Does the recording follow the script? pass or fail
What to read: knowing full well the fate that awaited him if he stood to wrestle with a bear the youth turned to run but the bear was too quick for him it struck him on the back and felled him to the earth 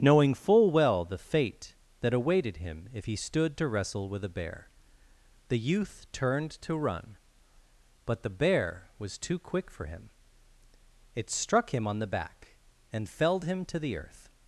pass